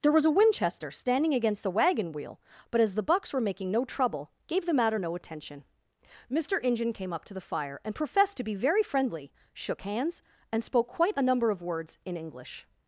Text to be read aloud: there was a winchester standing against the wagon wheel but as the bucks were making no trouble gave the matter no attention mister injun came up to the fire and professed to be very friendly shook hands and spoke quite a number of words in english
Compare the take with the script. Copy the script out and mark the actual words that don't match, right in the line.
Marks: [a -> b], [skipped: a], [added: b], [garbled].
there was a winchester standing against the wagon wheel but as the bucks were making no trouble gave the matter no attention mister injun came up to the fire and professed to be very friendly shook hands and spoke quite a number of words in english